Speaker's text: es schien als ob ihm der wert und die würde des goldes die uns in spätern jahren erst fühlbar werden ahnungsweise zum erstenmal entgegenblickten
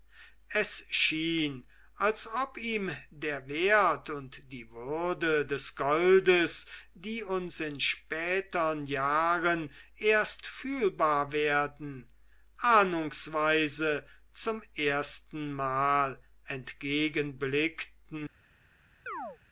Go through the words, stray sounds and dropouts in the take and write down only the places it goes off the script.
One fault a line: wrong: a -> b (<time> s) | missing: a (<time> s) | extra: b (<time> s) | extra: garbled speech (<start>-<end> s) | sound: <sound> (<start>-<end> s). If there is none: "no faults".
sound: chirp (19.1-19.4 s)